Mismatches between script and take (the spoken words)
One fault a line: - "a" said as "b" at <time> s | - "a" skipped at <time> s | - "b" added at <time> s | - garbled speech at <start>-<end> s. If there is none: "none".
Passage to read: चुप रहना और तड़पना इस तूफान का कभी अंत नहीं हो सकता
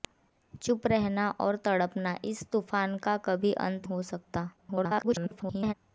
- "नहीं" skipped at 3.9 s
- garbled speech at 4.6-5.7 s